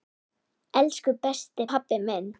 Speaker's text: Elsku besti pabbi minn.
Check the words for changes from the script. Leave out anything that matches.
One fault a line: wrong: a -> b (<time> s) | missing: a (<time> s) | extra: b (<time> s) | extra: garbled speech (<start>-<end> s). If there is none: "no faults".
no faults